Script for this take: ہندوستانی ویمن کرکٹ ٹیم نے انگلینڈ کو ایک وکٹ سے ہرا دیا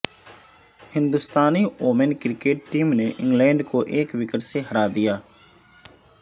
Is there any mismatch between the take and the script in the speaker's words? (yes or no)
no